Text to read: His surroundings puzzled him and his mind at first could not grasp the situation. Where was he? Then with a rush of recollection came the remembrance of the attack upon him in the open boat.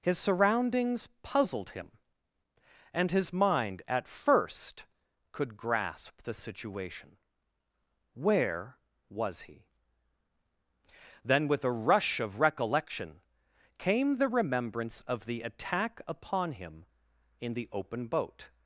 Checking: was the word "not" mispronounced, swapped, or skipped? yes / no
yes